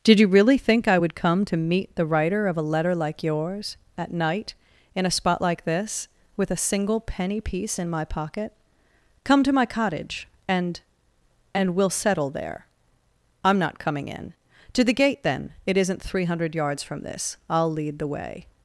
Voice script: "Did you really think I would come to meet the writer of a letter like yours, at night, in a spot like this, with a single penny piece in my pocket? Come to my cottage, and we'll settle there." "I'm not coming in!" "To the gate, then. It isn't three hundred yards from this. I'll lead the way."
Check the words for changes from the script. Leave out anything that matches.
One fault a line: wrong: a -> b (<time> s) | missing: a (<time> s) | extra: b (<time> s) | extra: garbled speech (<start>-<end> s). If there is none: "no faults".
extra: and (11.5 s)